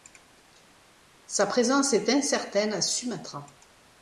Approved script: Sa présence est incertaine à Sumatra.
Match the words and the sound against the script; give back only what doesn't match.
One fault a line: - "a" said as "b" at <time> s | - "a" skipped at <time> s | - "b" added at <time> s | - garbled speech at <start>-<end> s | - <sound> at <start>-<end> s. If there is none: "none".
none